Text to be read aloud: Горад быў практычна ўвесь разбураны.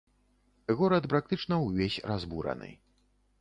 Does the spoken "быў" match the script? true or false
false